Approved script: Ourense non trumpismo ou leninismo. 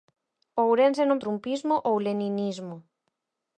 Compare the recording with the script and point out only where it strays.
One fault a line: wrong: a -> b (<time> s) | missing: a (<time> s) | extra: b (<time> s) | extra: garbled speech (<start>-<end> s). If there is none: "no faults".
no faults